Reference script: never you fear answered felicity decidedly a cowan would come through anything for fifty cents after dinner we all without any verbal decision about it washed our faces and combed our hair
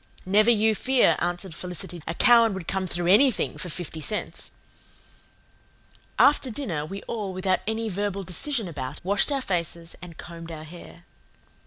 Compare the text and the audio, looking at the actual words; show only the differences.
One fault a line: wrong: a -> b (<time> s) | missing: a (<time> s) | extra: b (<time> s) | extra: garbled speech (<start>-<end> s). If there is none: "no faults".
missing: decidedly (2.0 s)
missing: it (9.0 s)